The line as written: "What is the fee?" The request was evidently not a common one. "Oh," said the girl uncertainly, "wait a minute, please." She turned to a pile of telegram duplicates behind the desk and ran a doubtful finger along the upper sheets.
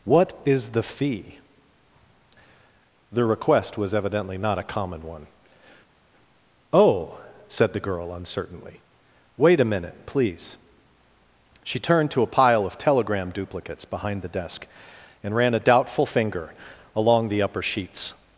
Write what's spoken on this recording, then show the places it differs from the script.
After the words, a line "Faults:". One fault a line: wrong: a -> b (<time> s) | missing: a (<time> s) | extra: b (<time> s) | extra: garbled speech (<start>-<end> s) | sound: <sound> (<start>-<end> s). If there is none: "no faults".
"What is the fee?" The request was evidently not a common one. "Oh," said the girl uncertainly, "wait a minute, please." She turned to a pile of telegram duplicates behind the desk and ran a doubtful finger along the upper sheets.
Faults:
no faults